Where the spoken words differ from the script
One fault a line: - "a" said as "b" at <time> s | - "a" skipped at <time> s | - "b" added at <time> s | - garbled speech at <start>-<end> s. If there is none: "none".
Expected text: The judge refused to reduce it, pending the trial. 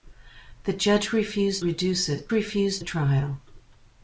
- "to" skipped at 1.6 s
- "pending" said as "refused" at 2.3 s